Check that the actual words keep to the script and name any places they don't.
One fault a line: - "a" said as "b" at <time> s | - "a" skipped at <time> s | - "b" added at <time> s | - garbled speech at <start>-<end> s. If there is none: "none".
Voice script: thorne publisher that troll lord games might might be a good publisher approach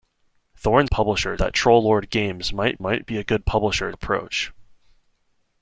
none